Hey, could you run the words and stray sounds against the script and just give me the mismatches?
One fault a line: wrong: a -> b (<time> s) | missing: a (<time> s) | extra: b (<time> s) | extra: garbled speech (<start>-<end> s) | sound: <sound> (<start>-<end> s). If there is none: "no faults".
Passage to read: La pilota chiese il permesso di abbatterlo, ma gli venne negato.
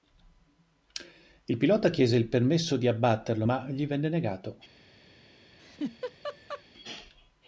wrong: La -> Il (1.4 s)
sound: laugh (5.6-6.6 s)